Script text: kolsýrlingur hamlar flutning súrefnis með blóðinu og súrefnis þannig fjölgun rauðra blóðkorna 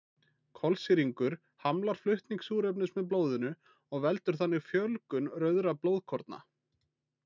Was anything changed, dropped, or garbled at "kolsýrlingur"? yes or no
no